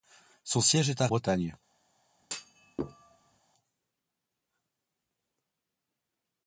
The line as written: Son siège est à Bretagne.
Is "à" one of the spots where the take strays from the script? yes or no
no